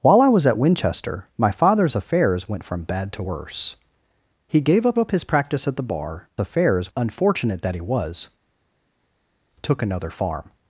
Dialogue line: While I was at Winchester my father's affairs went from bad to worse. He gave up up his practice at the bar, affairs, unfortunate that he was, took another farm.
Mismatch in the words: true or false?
false